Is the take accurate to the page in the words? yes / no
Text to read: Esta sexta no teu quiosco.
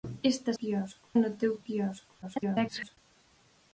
no